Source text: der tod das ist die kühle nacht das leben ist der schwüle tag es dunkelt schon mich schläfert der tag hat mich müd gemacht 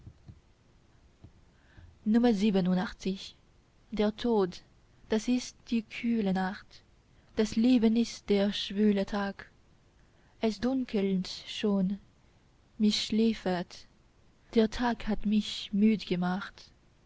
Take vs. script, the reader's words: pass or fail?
pass